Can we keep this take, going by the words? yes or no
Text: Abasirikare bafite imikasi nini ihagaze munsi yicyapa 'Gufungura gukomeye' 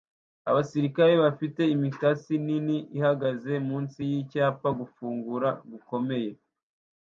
yes